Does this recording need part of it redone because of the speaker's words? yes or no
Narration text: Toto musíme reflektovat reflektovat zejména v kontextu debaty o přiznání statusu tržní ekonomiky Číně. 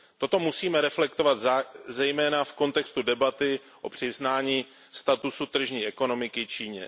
yes